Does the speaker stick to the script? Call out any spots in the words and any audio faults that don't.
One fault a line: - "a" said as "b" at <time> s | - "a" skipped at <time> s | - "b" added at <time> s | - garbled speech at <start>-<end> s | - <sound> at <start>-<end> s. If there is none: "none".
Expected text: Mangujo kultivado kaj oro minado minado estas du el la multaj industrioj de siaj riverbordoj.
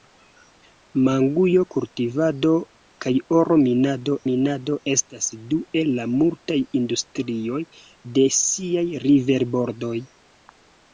none